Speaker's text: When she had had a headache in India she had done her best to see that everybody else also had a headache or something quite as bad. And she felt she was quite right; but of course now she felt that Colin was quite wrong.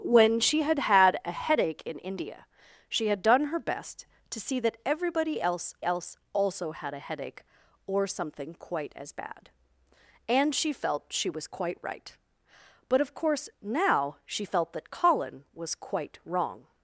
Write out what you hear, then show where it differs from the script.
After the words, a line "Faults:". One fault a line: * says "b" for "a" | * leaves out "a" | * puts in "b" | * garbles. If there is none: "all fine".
When she had had a headache in India she had done her best to see that everybody else else also had a headache or something quite as bad. And she felt she was quite right; but of course now she felt that Colin was quite wrong.
Faults:
* puts in "else"